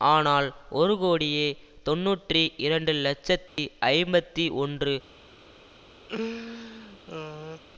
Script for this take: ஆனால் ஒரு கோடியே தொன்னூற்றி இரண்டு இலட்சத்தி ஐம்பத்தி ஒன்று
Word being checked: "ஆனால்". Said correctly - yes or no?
yes